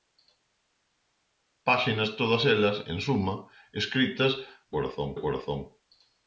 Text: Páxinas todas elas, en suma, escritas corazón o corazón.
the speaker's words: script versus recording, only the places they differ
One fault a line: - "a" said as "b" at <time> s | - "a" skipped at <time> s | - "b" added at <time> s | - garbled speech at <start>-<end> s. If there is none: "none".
none